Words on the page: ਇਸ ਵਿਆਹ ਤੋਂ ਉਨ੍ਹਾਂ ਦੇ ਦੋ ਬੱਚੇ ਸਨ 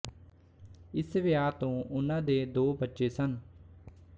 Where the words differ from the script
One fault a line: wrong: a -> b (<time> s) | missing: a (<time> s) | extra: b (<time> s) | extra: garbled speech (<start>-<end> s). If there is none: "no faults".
no faults